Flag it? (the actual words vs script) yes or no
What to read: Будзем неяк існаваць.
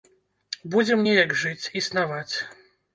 yes